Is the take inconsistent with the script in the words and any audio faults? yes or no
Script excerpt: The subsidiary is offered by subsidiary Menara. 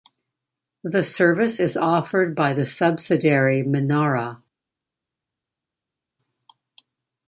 yes